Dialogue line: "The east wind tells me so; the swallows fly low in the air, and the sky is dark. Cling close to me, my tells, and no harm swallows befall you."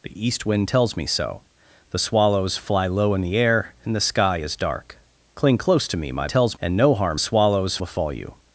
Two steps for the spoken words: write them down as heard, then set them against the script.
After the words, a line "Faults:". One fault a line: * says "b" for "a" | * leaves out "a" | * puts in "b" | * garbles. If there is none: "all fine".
"The east wind tells me so; the swallows fly low in the air, and the sky is dark. Cling close to me, my tells, and no harm swallows befall you."
Faults:
all fine